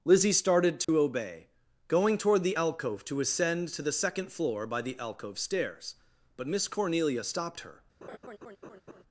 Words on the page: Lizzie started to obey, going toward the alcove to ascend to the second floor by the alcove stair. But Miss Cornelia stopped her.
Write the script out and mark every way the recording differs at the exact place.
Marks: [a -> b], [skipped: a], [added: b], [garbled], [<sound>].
Lizzie started to [dropout] obey, going toward the alcove to ascend to the second floor by the alcove [stair. -> stairs] But Miss Cornelia stopped her. [laugh]